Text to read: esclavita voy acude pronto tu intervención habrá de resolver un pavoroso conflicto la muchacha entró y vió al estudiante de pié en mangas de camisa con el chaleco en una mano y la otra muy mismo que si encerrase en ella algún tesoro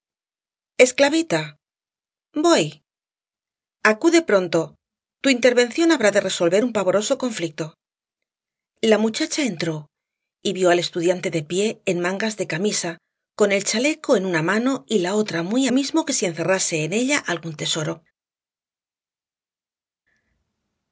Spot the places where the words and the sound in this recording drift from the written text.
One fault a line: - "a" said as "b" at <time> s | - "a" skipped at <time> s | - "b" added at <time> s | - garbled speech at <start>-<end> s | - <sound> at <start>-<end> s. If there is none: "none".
none